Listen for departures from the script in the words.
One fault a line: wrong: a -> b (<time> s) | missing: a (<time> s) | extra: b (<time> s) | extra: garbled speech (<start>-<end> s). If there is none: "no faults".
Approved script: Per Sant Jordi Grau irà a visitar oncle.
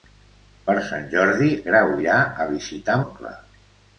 no faults